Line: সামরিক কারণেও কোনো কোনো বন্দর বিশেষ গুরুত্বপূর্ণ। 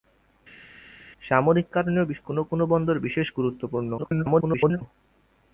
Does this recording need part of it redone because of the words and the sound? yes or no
yes